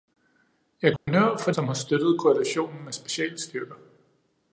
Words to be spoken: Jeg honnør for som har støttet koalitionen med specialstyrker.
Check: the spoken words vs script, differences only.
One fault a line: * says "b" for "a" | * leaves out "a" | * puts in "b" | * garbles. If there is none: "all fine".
all fine